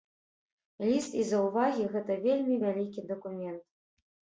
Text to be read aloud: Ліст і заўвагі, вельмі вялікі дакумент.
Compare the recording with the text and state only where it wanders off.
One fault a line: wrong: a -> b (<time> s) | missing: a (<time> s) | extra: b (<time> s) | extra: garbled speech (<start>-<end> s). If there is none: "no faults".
extra: гэта (1.9 s)